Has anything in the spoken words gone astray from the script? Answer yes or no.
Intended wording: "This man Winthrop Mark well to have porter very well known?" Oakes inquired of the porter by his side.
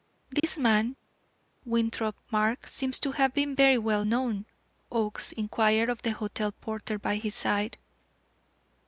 yes